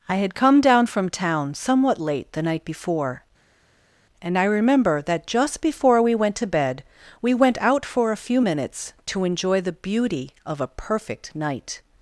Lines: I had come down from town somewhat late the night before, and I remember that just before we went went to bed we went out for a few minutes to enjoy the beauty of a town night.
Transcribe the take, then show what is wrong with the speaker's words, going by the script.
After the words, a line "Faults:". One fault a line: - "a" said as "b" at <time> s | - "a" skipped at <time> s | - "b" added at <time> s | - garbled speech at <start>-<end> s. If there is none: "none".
I had come down from town somewhat late the night before, and I remember that just before we went to bed we went out for a few minutes to enjoy the beauty of a perfect night.
Faults:
- "went" skipped at 6.3 s
- "town" said as "perfect" at 10.7 s